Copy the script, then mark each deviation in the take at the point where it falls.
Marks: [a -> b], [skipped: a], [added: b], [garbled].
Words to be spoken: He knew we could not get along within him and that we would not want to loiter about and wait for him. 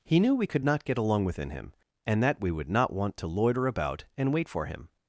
He knew we could not get along within him and that we would not want to loiter about and wait for him.